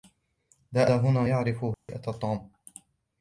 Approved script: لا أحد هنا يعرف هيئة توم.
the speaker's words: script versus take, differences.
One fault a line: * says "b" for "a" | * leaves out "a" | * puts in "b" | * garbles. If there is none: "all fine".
* leaves out "أحد"